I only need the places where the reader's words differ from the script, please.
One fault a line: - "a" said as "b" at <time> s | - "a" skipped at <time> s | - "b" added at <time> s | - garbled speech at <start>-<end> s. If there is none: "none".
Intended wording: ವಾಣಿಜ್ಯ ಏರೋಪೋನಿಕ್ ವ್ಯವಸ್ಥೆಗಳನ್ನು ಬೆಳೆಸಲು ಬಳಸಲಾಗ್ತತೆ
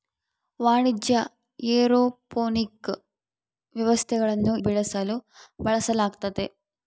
none